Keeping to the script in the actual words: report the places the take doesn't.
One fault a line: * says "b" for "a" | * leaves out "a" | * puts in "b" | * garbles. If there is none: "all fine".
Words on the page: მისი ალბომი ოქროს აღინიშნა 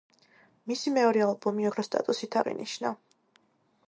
* puts in "მეორე"
* puts in "სტატუსით"